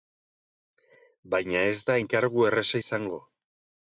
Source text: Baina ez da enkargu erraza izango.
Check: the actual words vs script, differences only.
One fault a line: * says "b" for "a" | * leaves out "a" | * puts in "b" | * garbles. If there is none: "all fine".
all fine